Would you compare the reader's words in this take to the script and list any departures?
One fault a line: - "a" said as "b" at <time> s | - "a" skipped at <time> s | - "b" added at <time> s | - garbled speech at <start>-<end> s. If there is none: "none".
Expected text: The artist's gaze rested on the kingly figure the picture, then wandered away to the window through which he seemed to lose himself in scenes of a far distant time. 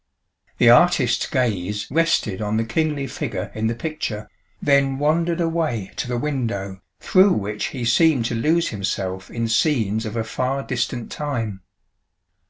- "in" added at 3.5 s